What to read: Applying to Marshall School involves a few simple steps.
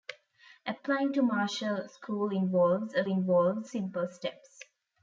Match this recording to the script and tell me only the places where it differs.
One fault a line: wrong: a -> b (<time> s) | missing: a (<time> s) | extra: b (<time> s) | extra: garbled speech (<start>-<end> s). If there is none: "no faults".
wrong: few -> involves (3.1 s)